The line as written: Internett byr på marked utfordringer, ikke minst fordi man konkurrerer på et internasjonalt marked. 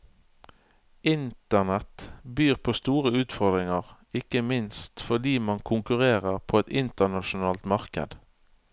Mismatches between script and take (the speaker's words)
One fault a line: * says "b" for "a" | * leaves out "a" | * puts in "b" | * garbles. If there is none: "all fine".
* says "store" for "marked"